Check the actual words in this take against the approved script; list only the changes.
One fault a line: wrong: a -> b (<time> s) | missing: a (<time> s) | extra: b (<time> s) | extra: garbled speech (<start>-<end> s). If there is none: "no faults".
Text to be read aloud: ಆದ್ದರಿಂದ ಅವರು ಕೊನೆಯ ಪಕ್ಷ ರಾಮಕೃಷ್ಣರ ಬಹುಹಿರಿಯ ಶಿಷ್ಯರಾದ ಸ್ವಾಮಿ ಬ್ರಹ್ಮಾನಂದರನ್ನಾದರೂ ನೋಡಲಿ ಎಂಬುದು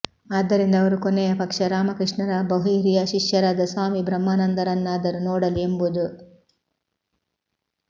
no faults